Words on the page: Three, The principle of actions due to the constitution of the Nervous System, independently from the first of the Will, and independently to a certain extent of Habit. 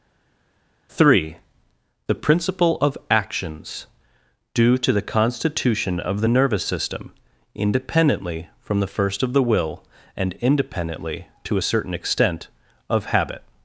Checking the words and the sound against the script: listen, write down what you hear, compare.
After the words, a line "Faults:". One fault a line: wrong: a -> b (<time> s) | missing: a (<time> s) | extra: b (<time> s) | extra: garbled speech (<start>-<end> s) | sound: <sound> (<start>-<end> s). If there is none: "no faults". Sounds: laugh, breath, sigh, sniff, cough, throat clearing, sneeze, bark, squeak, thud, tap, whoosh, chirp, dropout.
Three, The principle of actions due to the constitution of the Nervous System, independently from the first of the Will, and independently to a certain extent of Habit.
Faults:
no faults